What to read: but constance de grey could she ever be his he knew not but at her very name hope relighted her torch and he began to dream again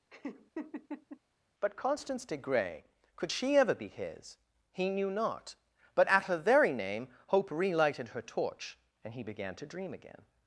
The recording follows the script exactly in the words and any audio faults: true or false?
false